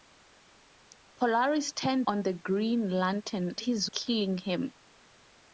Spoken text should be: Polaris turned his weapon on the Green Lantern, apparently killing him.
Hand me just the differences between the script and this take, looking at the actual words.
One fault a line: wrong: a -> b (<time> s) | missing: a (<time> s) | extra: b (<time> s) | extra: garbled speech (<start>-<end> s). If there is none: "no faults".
missing: his weapon (2.1 s)
wrong: apparently -> his (3.6 s)